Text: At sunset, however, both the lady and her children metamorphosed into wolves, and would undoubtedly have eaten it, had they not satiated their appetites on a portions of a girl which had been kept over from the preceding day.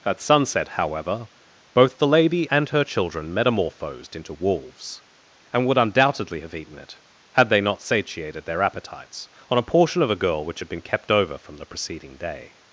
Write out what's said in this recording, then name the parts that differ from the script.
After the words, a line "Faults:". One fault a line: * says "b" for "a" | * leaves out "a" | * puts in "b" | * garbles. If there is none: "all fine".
At sunset, however, both the lady and her children metamorphosed into wolves, and would undoubtedly have eaten it, had they not satiated their appetites on a portion of a girl which had been kept over from the preceding day.
Faults:
* says "portion" for "portions"